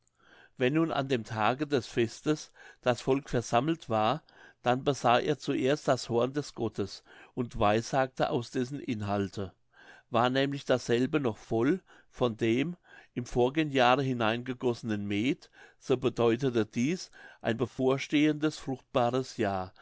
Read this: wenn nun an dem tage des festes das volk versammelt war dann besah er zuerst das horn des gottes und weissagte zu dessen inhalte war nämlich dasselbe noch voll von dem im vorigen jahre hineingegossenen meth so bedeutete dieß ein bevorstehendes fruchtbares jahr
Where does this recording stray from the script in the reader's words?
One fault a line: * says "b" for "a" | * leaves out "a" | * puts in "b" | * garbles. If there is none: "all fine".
* says "aus" for "zu"